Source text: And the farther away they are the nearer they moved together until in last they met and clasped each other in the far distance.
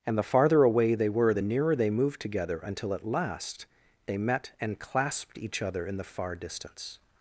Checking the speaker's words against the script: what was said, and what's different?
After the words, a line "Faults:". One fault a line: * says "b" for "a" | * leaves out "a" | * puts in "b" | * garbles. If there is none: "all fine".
And the farther away they were the nearer they moved together until at last they met and clasped each other in the far distance.
Faults:
* says "were" for "are"
* says "at" for "in"